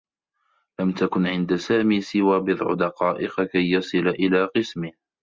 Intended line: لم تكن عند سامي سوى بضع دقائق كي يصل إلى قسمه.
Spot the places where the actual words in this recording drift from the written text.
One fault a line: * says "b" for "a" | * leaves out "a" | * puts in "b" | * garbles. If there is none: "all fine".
all fine